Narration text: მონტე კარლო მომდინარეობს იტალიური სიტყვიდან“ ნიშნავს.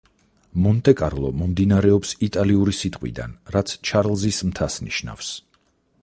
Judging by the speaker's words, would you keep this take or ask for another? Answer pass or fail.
fail